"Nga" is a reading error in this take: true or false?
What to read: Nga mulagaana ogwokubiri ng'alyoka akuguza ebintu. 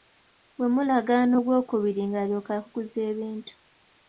true